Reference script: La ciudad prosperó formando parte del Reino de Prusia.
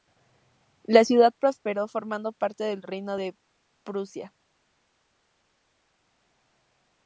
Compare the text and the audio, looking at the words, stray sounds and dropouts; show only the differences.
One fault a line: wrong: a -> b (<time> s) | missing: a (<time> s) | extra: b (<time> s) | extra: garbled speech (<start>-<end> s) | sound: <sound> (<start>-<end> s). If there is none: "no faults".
no faults